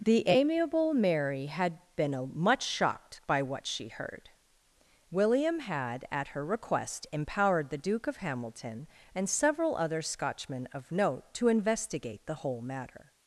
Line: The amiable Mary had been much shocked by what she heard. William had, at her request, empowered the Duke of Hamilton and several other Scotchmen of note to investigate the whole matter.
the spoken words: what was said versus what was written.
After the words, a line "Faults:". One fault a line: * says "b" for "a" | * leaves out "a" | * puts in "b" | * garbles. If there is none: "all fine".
The amiable Mary had been much shocked by what she heard. William had, at her request, empowered the Duke of Hamilton and several other Scotchmen of note to investigate the whole matter.
Faults:
all fine